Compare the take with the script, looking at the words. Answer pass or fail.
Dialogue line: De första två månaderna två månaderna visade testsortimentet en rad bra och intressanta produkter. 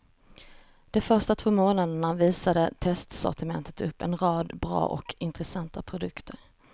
fail